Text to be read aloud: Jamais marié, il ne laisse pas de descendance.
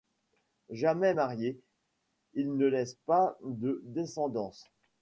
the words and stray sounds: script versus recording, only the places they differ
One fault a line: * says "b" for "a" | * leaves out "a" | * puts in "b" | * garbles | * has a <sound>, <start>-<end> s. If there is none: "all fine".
all fine